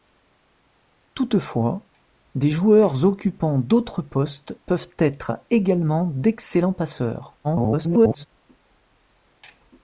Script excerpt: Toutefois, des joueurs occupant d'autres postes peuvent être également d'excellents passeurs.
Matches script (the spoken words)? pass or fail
fail